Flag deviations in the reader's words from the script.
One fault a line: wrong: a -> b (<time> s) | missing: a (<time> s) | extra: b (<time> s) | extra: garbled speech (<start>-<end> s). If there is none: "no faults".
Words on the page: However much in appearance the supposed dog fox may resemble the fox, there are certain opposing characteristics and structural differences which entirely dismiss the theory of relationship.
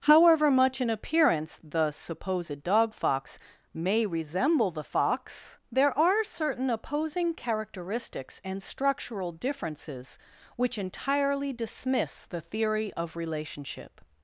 no faults